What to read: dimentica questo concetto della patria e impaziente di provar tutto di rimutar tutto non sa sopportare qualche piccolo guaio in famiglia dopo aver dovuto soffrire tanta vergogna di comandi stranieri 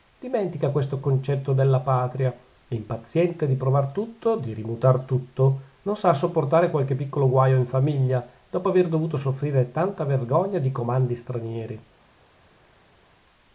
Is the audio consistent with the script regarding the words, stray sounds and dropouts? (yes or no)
yes